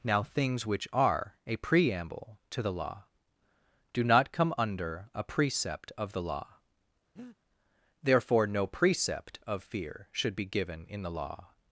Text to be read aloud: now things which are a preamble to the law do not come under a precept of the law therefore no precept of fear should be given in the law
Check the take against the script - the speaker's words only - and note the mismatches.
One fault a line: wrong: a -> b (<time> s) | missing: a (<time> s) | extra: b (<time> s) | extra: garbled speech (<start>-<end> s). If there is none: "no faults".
no faults